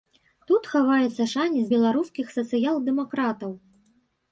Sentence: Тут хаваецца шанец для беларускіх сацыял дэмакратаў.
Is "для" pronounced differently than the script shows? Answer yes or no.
yes